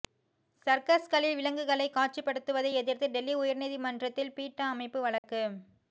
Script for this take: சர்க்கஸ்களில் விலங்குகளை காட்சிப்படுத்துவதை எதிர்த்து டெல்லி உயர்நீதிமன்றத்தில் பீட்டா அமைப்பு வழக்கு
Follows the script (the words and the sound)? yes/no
no